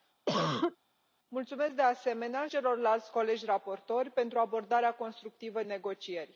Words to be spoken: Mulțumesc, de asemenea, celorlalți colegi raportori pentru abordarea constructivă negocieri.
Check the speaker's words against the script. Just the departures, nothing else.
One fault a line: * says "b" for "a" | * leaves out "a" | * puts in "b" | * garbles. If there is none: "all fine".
all fine